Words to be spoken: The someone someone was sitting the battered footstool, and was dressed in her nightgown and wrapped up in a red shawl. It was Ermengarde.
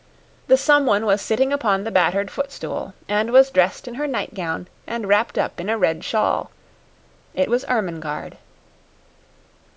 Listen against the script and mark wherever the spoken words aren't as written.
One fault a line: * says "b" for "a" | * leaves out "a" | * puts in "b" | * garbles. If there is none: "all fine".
* leaves out "someone"
* puts in "upon"